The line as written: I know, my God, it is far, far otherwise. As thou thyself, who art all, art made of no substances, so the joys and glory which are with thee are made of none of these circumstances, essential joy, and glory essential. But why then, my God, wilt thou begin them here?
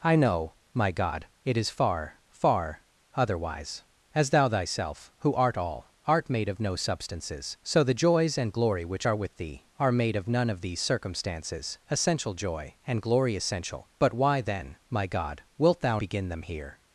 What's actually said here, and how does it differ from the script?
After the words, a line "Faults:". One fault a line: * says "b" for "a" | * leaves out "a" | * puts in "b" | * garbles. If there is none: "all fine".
I know, my God, it is far, far otherwise. As thou thyself, who art all, art made of no substances, so the joys and glory which are with thee are made of none of these circumstances, essential joy, and glory essential. But why then, my God, wilt thou begin them here?
Faults:
all fine